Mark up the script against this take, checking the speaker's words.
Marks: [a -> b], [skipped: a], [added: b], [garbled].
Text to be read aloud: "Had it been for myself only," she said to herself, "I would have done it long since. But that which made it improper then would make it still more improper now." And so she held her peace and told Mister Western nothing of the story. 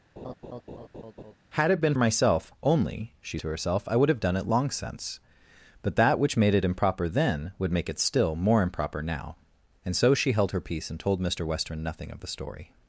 "Had it been [skipped: for] myself only," she [skipped: said] to herself, "I would have done it long since. But that which made it improper then would make it still more improper now." And so she held her peace and told Mister Western nothing of the story.